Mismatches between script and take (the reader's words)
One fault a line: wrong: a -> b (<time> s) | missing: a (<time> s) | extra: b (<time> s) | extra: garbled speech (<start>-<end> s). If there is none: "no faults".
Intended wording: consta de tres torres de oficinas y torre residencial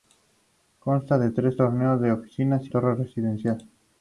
no faults